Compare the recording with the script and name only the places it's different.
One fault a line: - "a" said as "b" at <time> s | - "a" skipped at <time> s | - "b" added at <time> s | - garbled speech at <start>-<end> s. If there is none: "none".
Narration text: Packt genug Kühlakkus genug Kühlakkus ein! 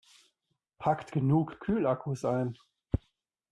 - "genug Kühlakkus" skipped at 2.3 s